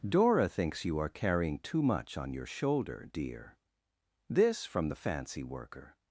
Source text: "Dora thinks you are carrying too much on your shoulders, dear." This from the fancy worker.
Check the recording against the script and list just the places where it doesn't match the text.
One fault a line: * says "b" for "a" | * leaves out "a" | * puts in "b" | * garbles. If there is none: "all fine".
* says "shoulder" for "shoulders"